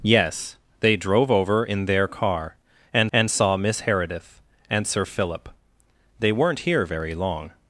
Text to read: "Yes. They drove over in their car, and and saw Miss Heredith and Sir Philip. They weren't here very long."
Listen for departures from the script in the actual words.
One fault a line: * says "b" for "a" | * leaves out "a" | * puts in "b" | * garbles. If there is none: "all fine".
all fine